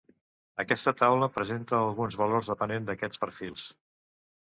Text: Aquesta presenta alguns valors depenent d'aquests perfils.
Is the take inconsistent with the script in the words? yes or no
yes